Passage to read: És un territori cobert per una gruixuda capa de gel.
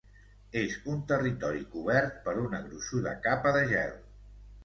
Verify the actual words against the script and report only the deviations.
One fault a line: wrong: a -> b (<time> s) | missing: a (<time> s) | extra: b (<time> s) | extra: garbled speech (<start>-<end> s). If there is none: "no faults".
no faults